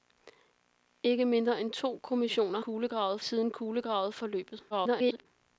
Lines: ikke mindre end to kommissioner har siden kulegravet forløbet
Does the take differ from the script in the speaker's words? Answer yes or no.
yes